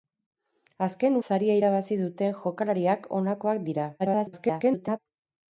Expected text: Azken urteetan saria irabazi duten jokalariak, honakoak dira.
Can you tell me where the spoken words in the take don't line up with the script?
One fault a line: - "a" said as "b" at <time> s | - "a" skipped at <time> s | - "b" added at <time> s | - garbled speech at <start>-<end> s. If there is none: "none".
- "urteetan" skipped at 1.2 s
- garbled speech at 4.0-5.0 s